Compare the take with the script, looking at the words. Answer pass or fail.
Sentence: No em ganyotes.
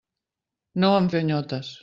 pass